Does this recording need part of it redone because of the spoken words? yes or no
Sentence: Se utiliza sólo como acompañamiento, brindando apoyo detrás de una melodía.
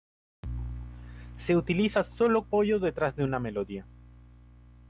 yes